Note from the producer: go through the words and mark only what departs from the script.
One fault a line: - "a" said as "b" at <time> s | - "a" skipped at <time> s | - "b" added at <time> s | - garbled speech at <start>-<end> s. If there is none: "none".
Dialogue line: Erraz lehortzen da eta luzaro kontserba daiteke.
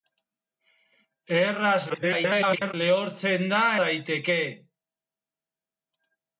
- garbled speech at 1.9-2.7 s
- "eta luzaro kontserba" skipped at 3.6 s